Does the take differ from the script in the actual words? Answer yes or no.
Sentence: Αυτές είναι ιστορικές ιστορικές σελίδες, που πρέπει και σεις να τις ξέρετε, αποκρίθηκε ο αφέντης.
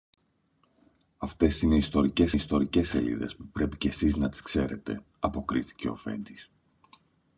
no